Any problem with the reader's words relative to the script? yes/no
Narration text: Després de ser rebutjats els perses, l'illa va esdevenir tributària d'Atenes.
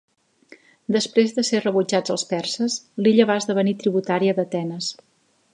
no